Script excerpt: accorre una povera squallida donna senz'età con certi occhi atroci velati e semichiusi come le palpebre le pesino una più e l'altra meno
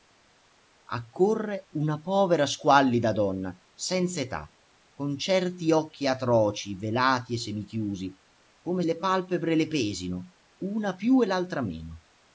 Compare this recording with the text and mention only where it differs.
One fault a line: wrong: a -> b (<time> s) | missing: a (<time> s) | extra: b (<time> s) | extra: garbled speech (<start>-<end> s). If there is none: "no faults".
no faults